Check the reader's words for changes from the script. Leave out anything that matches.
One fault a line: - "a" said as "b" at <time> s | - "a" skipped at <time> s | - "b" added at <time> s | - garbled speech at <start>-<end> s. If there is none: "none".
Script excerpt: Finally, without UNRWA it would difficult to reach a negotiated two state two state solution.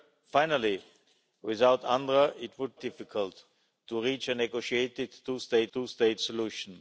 none